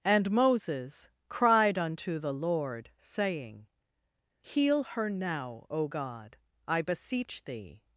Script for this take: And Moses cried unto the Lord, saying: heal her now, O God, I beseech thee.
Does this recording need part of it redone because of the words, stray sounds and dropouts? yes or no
no